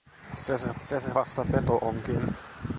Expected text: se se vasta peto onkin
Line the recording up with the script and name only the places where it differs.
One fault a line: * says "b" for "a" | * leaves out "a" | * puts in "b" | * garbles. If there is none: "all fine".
* puts in "se se"